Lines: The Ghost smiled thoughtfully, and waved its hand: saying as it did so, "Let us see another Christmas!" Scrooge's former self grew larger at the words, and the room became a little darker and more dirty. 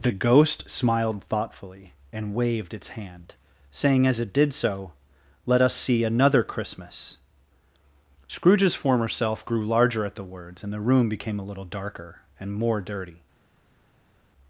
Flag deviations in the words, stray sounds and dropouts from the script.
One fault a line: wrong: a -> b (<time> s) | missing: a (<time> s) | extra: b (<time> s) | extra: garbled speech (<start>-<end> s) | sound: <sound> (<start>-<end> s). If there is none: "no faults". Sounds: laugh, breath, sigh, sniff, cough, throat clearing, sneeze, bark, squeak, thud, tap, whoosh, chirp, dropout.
no faults